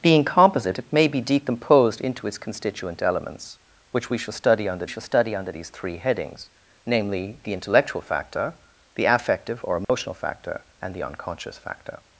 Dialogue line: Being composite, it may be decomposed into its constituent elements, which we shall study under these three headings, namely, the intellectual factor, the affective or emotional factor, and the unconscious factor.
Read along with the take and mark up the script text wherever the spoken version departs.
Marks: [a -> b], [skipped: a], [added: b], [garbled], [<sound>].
Being composite, it may be decomposed into its constituent elements, which we shall study under [added: shall study under] these three headings, namely, the intellectual factor, the affective or emotional [dropout] factor, and the unconscious factor.